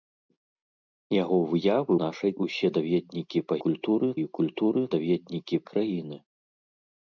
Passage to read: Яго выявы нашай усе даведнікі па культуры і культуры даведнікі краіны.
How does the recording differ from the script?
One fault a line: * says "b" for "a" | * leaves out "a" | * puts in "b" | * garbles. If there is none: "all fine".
all fine